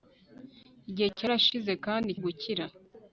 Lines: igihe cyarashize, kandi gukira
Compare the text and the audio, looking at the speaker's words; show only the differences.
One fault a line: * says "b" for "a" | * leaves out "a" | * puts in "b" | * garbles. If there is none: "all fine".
all fine